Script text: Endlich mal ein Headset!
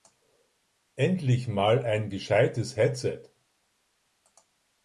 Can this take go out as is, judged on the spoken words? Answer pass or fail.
fail